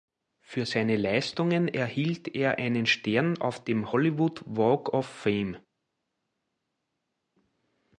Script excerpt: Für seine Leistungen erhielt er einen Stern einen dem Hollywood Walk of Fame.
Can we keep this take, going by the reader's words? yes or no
no